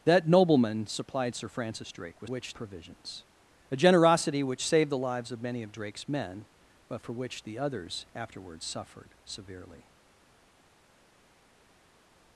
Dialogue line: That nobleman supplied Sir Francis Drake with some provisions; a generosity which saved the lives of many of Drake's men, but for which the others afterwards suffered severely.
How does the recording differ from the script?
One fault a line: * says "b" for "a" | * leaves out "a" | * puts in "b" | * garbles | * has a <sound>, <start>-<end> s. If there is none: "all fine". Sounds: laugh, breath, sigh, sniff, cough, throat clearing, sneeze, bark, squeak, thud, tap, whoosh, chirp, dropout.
* says "which" for "some"